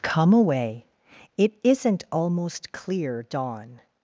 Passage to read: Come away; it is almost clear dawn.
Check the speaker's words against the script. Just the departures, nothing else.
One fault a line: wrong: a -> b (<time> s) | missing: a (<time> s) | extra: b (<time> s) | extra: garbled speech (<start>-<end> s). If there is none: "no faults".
wrong: is -> isn't (1.6 s)